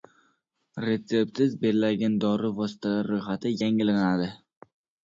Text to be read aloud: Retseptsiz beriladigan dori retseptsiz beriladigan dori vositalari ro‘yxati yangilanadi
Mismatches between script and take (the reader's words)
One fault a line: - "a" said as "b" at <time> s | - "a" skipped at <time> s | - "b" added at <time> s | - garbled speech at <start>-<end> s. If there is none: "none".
- "retseptsiz beriladigan dori" skipped at 2.5 s